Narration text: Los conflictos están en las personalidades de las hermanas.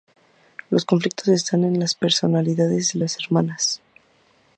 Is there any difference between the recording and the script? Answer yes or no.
no